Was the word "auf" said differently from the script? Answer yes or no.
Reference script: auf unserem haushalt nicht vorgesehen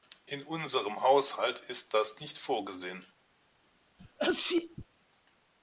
yes